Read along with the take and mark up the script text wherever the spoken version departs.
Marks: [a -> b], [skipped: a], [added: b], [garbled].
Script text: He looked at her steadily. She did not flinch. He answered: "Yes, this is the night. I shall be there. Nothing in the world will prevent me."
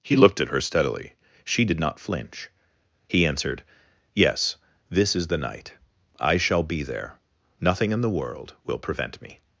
He looked at her steadily. She did not flinch. He answered: "Yes, this is the night. I shall be there. Nothing in the world will prevent me."